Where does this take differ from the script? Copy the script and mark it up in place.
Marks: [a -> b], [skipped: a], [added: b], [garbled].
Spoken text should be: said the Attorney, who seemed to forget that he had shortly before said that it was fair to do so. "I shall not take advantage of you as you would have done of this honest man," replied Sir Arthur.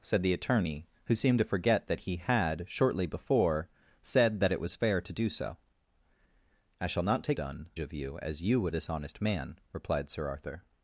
said the Attorney, who seemed to forget that he had shortly before said that it was fair to do so. "I shall not take [advantage -> done] of you as you would [skipped: have done of] this honest man," replied Sir Arthur.